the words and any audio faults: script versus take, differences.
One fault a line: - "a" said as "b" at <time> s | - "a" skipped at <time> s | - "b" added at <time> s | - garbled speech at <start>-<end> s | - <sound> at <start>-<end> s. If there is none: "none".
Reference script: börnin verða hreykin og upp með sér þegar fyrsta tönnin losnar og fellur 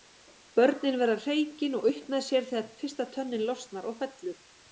none